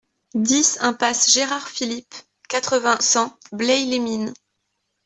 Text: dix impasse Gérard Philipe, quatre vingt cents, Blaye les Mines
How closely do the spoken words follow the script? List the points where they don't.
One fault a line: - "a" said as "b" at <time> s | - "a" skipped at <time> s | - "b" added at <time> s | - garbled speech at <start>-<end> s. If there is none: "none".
none